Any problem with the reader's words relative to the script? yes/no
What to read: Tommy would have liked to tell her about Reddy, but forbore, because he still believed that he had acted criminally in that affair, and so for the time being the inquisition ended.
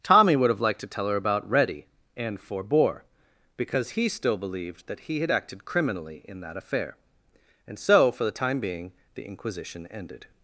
yes